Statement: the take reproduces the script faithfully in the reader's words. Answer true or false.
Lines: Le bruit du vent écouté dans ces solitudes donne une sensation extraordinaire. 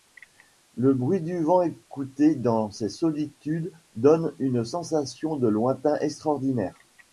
false